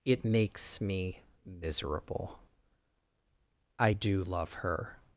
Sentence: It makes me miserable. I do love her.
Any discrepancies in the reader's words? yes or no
no